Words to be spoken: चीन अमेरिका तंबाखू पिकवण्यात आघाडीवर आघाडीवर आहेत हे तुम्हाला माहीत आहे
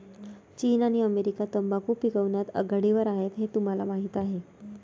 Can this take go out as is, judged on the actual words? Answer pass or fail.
fail